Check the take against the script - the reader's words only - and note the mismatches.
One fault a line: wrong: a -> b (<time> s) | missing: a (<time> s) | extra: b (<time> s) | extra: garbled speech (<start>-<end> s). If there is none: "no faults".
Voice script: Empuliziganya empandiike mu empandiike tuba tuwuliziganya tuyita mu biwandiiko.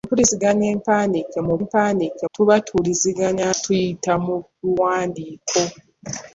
no faults